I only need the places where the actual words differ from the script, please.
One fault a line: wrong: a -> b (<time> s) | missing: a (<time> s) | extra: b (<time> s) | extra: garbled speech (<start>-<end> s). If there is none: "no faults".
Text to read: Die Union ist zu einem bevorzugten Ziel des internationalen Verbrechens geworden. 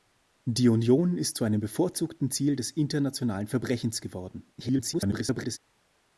extra: garbled speech (4.6-5.6 s)